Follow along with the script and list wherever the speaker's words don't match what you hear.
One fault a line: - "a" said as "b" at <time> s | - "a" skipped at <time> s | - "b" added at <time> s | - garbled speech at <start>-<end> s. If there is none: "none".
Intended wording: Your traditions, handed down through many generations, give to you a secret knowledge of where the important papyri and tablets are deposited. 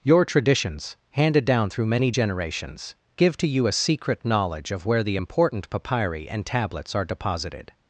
none